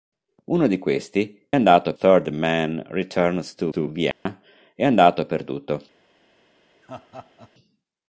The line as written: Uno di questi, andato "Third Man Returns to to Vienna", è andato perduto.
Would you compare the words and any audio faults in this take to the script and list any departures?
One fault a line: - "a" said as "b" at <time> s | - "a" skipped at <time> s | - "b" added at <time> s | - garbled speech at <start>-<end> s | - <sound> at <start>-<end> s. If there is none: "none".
- dropout at 4.1-4.3 s
- laugh at 6.8-7.5 s